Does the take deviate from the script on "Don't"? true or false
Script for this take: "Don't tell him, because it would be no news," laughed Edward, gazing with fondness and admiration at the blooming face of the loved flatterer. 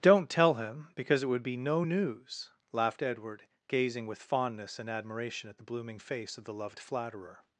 false